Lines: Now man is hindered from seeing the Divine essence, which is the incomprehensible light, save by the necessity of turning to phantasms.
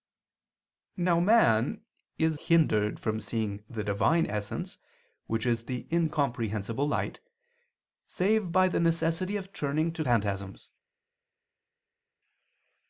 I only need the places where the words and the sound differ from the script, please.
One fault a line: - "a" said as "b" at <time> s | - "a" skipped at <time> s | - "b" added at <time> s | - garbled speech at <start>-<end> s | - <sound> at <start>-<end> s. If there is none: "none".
none